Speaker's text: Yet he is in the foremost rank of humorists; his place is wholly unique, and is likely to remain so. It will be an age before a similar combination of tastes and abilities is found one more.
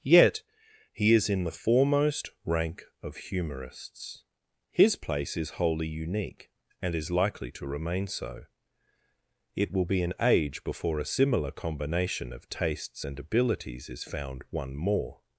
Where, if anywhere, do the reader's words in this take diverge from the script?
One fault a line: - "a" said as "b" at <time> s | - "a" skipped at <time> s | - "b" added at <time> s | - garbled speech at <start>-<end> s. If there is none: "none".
none